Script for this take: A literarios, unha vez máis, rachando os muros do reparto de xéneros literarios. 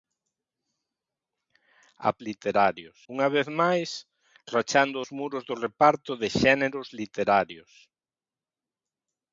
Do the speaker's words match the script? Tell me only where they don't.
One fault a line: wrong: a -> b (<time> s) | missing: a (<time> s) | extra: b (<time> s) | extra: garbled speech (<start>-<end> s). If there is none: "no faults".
no faults